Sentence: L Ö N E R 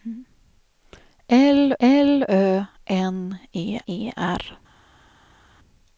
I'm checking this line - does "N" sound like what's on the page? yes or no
yes